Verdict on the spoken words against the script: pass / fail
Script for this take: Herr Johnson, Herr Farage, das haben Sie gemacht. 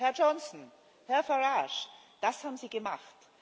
pass